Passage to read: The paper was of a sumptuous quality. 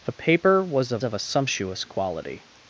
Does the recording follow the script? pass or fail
fail